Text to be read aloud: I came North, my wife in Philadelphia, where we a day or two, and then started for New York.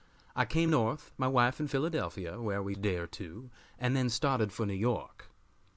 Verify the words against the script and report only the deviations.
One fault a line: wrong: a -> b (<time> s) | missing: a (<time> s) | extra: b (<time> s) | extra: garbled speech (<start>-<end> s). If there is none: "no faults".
no faults